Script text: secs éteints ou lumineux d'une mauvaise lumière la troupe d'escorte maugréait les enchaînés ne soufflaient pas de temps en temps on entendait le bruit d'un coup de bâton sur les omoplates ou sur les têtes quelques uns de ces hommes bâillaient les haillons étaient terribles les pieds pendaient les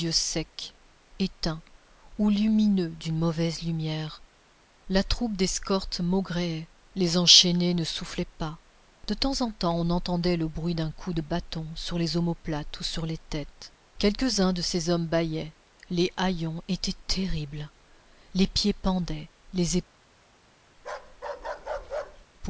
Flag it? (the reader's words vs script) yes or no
no